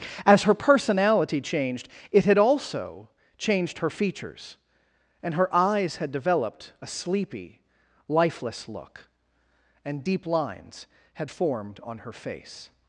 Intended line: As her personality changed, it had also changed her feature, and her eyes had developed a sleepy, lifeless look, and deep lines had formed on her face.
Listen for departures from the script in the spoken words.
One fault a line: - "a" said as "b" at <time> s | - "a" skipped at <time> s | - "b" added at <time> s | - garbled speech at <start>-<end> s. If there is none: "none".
- "feature" said as "features" at 3.9 s